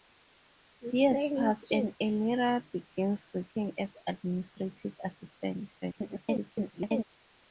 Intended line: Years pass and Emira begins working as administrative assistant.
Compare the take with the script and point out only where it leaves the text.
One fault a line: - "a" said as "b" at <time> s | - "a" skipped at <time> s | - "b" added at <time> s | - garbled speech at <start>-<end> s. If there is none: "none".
- garbled speech at 5.8-7.0 s